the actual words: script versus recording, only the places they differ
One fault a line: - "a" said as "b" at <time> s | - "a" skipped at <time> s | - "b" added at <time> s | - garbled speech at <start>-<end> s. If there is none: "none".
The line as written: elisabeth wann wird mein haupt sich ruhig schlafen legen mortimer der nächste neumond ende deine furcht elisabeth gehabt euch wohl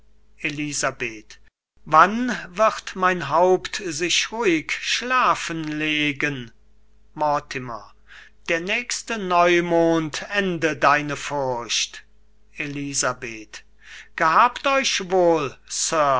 none